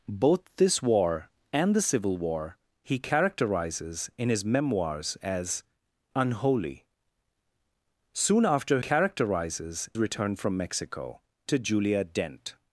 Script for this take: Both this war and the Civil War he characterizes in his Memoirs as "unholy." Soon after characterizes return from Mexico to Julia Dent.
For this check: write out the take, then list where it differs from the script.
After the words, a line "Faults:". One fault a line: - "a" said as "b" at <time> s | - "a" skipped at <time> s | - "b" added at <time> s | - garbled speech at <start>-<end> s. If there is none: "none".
Both this war and the Civil War he characterizes in his Memoirs as "unholy." Soon after characterizes return from Mexico to Julia Dent.
Faults:
none